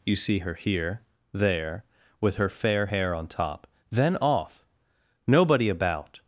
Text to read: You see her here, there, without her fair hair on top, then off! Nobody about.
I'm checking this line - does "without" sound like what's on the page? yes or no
no